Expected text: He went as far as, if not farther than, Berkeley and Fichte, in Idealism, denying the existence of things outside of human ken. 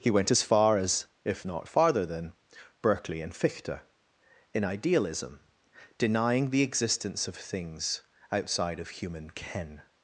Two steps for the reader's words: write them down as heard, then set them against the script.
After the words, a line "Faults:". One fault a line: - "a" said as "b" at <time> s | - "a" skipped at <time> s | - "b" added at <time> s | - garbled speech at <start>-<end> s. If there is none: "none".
He went as far as, if not farther than, Berkeley and Fichte, in Idealism, denying the existence of things outside of human ken.
Faults:
none